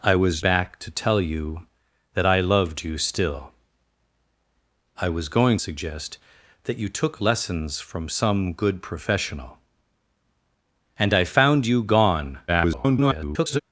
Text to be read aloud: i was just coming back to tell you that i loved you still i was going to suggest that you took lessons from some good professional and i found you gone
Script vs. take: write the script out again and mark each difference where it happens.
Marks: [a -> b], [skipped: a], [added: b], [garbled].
i was [skipped: just coming] back to tell you that i loved you still i was going [skipped: to] suggest that you took lessons from some good professional and i found you gone [garbled]